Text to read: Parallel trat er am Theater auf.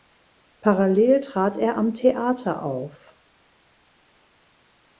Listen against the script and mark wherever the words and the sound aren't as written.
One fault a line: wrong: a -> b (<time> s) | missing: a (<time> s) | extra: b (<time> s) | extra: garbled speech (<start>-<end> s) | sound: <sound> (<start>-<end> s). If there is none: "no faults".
no faults